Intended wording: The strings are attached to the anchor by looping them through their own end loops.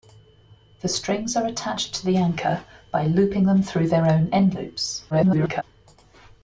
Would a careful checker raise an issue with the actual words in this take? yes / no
yes